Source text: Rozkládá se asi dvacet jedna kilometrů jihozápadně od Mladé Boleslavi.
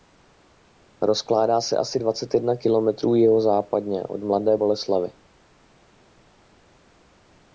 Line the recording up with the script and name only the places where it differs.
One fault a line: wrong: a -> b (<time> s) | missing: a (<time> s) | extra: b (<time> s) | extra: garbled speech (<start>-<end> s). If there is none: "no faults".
no faults